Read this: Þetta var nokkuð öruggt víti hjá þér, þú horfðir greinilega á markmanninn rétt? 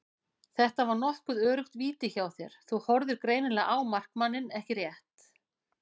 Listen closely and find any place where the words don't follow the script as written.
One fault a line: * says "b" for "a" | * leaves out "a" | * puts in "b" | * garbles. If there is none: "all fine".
* puts in "ekki"